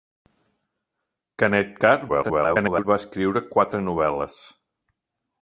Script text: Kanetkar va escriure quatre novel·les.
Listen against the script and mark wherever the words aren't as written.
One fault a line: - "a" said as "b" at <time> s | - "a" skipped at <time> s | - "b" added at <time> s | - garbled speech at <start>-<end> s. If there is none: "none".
- garbled speech at 2.1-2.9 s